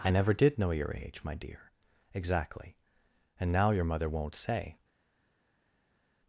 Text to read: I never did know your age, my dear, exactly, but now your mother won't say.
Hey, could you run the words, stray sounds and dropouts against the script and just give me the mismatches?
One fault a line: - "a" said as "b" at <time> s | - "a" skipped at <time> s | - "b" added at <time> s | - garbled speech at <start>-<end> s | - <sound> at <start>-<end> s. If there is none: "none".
- "but" said as "and" at 3.4 s